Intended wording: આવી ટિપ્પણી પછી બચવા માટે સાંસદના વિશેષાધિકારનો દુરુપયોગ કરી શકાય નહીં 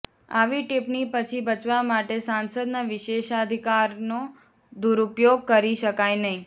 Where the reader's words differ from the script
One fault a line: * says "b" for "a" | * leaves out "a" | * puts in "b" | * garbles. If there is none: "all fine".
all fine